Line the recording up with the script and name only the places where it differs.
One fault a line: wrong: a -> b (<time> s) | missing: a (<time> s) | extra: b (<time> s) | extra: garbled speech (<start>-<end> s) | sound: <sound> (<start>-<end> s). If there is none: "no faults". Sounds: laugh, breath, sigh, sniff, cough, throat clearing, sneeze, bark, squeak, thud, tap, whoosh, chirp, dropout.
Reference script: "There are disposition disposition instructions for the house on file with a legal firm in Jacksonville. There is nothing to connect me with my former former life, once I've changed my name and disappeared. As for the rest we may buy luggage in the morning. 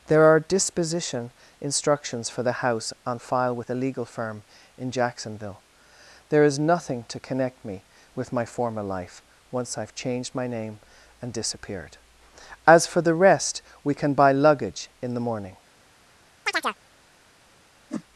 missing: disposition (1.3 s)
missing: former (8.8 s)
wrong: may -> can (13.9 s)
sound: chirp (16.5-16.8 s)
sound: whoosh (17.9-18.0 s)